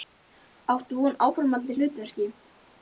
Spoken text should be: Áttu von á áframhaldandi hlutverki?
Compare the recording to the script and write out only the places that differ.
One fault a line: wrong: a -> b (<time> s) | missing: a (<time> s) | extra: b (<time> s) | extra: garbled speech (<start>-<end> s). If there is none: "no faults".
no faults